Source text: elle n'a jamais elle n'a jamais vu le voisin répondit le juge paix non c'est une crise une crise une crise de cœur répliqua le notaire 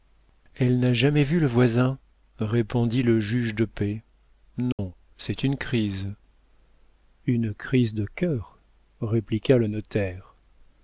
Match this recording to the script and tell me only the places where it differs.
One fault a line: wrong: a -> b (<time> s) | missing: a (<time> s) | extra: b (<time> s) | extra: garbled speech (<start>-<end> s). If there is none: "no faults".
missing: elle n'a jamais (1.2 s)
extra: de (3.5 s)
missing: une crise (7.9 s)